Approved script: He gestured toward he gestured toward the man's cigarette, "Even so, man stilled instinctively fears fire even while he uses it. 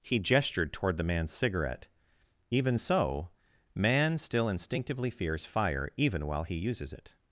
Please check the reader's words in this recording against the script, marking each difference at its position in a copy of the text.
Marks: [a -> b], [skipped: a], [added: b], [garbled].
He gestured toward [skipped: he gestured toward] the man's cigarette, "Even so, man [stilled -> still] instinctively fears fire even while he uses it.